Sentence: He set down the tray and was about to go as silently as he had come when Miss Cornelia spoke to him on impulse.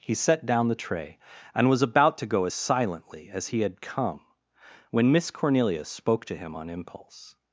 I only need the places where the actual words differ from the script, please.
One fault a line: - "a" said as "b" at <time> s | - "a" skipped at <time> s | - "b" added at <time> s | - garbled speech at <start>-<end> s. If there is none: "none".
none